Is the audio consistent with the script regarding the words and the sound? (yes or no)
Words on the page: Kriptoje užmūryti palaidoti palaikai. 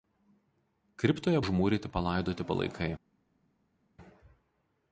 yes